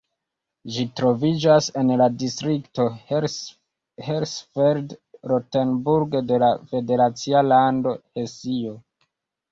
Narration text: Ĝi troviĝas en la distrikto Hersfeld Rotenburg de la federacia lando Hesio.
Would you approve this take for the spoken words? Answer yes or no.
yes